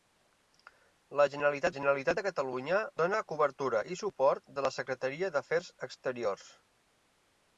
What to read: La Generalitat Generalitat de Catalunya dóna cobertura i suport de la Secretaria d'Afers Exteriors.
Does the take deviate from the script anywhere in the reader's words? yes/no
no